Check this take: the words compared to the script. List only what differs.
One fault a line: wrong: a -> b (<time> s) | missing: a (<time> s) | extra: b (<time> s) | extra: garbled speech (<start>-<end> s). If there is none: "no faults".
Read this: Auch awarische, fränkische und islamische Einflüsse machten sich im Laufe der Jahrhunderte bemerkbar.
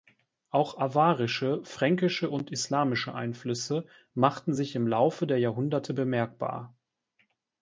no faults